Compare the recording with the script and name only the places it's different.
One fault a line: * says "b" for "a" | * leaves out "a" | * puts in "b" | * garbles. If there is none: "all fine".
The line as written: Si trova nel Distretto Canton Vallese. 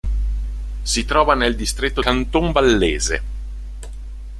all fine